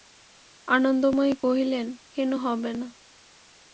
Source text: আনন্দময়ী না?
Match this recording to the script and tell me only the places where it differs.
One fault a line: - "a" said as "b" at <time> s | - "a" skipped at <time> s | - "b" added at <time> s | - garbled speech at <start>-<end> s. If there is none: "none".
- "কহিলেন কেন হবে" added at 1.4 s